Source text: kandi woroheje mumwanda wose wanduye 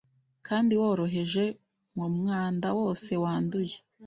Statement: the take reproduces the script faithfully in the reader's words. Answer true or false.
true